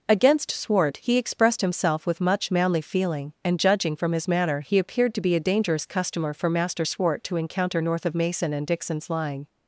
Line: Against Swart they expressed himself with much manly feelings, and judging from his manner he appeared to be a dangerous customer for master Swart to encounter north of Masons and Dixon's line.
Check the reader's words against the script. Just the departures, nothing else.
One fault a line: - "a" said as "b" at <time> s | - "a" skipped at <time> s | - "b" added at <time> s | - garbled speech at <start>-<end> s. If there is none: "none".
- "they" said as "he" at 1.0 s
- "feelings" said as "feeling" at 2.8 s
- "Masons" said as "Mason" at 8.1 s